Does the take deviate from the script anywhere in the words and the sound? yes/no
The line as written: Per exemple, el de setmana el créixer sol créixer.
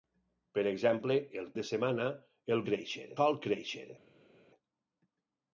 no